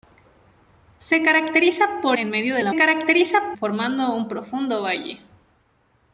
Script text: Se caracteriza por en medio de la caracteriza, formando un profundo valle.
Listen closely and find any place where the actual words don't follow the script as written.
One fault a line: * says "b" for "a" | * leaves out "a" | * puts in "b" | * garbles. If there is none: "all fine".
all fine